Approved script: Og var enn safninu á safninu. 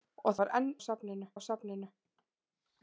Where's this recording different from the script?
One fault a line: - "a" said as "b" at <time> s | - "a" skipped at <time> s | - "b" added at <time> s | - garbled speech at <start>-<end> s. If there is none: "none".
none